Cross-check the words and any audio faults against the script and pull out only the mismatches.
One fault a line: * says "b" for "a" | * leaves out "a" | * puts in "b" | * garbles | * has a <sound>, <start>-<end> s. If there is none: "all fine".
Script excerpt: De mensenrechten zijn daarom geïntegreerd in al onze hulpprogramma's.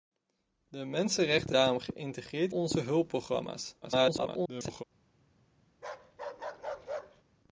* leaves out "zijn"
* leaves out "in al"
* garbles
* has a bark, 5.7-7.2 s